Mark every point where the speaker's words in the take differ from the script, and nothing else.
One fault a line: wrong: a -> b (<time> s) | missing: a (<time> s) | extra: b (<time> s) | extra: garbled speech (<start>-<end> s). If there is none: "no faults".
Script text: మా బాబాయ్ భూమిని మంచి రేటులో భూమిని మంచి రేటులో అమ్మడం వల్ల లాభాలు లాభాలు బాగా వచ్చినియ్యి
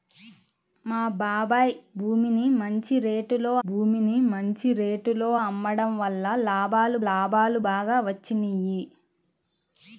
no faults